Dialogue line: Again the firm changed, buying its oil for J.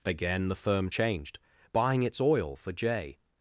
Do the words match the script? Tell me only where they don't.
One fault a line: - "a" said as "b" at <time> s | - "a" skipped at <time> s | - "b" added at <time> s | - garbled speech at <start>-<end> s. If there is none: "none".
none